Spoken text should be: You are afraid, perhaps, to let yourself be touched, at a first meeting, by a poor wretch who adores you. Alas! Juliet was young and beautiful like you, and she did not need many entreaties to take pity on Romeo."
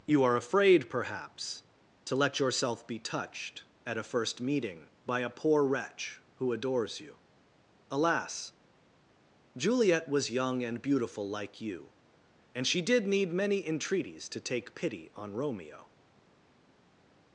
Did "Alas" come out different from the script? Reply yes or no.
no